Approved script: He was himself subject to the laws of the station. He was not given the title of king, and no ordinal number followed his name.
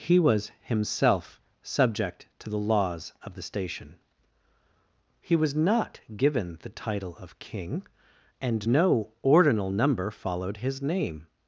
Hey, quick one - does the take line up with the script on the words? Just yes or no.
yes